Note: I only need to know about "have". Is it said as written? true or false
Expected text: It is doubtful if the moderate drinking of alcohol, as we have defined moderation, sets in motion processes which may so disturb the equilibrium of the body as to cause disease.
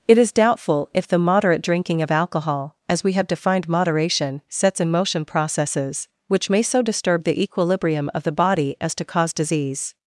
true